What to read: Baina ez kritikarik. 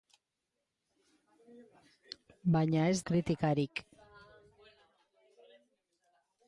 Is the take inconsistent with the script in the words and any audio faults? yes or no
no